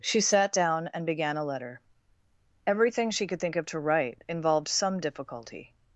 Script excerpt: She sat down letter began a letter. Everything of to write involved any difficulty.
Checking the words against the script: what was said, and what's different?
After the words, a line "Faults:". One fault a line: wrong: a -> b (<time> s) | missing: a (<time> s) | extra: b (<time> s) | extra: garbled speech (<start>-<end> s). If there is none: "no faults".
She sat down and began a letter. Everything she could think of to write involved some difficulty.
Faults:
wrong: letter -> and (0.9 s)
extra: she could think (3.1 s)
wrong: any -> some (4.7 s)